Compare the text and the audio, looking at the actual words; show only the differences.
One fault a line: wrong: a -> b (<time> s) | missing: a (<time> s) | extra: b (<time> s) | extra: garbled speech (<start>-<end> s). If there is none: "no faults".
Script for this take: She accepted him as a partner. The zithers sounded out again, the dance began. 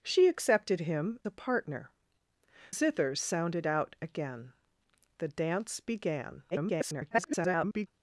missing: as (1.2 s)
missing: The (1.9 s)
extra: garbled speech (6.5-7.9 s)